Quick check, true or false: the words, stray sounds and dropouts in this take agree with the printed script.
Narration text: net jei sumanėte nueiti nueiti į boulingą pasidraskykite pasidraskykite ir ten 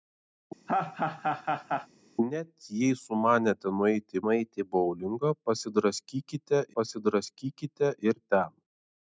false